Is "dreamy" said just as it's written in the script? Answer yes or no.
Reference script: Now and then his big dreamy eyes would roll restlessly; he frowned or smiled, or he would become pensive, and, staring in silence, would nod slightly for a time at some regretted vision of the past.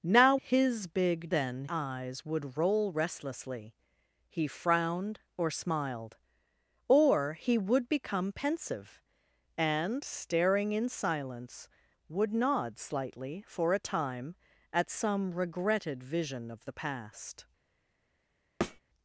no